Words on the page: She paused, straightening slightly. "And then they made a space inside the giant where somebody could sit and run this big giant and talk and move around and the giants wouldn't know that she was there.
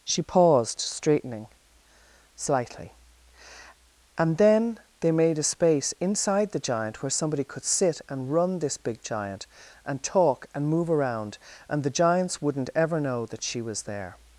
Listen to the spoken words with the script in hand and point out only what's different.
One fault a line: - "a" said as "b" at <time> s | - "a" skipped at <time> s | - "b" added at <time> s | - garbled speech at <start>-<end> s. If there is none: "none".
- "ever" added at 12.8 s